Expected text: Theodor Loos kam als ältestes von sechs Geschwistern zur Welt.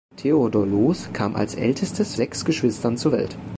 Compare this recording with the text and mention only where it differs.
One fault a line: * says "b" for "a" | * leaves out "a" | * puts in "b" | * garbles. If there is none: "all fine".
* leaves out "von"